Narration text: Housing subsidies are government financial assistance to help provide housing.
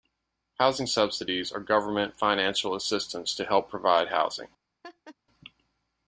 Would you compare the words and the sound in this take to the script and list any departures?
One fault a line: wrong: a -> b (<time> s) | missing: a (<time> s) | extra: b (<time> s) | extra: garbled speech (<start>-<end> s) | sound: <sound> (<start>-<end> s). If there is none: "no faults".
sound: laugh (4.8-5.2 s)